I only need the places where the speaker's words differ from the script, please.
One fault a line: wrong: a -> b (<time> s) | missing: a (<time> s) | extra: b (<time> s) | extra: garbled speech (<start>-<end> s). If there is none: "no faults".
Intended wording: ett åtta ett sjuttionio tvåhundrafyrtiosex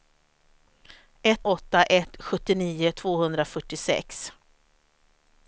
no faults